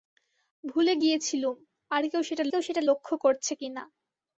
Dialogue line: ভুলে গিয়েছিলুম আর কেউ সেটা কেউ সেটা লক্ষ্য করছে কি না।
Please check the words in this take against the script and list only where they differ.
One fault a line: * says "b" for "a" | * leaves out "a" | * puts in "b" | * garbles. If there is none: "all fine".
all fine